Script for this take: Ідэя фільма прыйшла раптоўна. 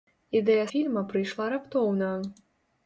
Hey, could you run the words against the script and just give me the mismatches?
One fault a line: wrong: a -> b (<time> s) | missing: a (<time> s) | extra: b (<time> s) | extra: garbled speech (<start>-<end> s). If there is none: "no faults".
no faults